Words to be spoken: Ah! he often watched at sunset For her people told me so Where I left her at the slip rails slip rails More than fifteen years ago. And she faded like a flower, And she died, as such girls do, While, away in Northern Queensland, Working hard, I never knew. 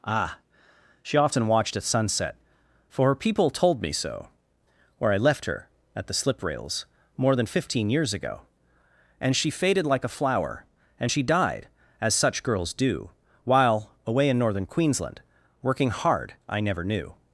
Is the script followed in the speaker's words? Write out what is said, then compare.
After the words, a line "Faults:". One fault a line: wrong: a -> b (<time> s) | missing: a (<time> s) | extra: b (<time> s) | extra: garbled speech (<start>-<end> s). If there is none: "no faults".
Ah! she often watched at sunset For her people told me so Where I left her at the slip rails More than fifteen years ago. And she faded like a flower, And she died, as such girls do, While, away in Northern Queensland, Working hard, I never knew.
Faults:
wrong: he -> she (1.0 s)
missing: slip rails (6.9 s)